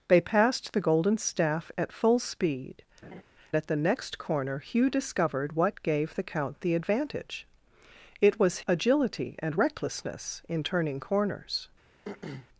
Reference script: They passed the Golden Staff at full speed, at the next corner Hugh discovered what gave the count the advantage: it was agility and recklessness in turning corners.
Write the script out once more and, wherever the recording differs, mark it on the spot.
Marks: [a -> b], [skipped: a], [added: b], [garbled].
They passed the Golden Staff at full speed, at the next corner Hugh discovered what gave the count the advantage: it was agility and recklessness in turning corners.